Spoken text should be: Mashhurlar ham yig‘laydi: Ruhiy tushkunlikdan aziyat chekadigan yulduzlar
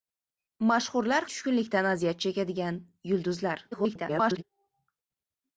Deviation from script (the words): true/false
true